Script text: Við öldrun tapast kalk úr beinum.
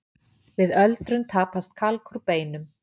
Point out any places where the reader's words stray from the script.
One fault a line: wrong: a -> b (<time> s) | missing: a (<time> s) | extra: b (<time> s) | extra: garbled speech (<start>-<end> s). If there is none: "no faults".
no faults